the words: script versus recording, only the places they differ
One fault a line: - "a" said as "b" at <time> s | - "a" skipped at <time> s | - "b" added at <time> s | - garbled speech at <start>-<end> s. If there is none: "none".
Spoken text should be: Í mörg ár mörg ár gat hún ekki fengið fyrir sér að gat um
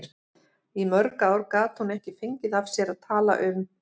- "mörg ár" skipped at 1.4 s
- "fyrir" said as "af" at 2.6 s
- "gat" said as "tala" at 3.1 s